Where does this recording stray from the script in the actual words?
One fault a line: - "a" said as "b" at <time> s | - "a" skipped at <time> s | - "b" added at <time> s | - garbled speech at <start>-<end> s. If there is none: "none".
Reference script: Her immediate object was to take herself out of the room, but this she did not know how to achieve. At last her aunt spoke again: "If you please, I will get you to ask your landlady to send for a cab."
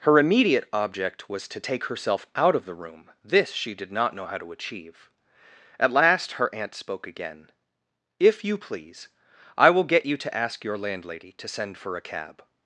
- "but" skipped at 3.1 s